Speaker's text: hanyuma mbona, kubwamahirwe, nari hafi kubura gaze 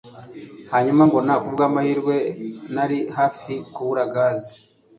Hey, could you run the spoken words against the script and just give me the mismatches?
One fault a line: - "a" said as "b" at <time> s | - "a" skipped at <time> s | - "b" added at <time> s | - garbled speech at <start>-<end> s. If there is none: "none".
none